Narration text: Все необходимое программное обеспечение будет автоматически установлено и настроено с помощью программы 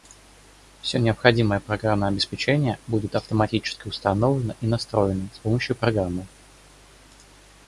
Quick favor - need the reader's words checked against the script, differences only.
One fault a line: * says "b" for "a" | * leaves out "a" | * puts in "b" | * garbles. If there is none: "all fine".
all fine